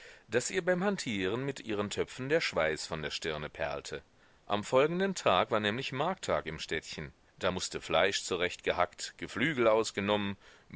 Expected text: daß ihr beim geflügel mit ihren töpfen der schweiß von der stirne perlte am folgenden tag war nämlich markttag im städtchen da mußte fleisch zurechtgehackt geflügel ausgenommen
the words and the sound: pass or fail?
fail